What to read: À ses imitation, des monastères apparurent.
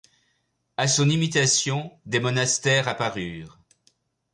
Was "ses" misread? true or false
true